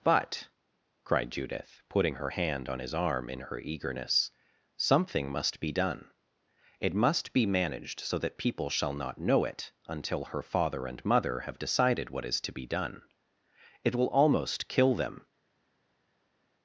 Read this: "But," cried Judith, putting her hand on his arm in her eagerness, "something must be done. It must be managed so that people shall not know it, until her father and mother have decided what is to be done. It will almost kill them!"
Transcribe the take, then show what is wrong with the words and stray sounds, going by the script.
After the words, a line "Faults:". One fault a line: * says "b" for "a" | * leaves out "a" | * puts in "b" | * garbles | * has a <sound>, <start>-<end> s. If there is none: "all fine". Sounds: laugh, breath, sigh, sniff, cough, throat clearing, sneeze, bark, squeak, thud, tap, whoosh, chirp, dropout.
"But," cried Judith, putting her hand on his arm in her eagerness, "something must be done. It must be managed so that people shall not know it, until her father and mother have decided what is to be done. It will almost kill them!"
Faults:
all fine